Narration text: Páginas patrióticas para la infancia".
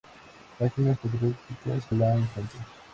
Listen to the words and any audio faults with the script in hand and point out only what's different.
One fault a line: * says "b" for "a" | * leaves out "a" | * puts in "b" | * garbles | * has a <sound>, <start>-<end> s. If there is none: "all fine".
* leaves out "para"